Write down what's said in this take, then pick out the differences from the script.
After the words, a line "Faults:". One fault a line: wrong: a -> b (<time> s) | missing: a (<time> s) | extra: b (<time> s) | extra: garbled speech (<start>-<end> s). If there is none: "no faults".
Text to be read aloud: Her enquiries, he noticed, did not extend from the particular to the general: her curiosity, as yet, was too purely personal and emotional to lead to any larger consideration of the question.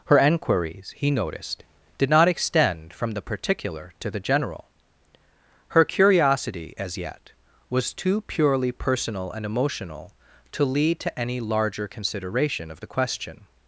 Her enquiries, he noticed, did not extend from the particular to the general: her curiosity, as yet, was too purely personal and emotional to lead to any larger consideration of the question.
Faults:
no faults